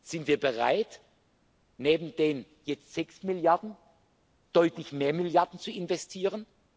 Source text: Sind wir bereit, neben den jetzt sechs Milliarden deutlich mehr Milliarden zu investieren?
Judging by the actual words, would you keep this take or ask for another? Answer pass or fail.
pass